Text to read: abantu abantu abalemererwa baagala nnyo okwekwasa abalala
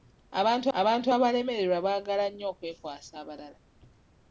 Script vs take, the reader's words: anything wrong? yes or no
no